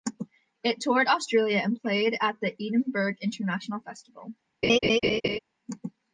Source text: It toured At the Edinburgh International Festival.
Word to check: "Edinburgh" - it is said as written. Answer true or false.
true